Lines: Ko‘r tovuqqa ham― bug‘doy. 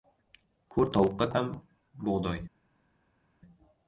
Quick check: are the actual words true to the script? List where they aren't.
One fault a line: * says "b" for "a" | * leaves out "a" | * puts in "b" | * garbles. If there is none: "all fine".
all fine